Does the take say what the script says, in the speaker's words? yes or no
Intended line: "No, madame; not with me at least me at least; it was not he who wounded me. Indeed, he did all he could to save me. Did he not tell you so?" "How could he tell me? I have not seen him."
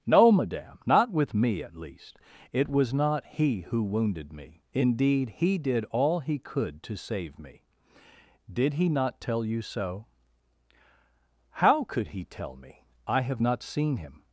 no